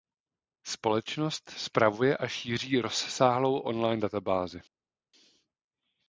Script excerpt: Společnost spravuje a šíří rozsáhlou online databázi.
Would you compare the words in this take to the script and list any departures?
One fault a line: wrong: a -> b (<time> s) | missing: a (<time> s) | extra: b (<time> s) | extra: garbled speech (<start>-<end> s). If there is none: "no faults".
no faults